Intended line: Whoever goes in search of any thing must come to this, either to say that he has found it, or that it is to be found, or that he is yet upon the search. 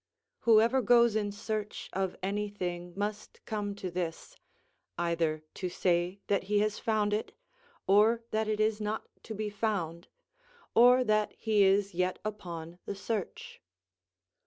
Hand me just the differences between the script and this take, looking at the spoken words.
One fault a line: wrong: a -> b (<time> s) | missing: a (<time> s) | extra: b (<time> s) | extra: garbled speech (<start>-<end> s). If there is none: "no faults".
extra: not (8.8 s)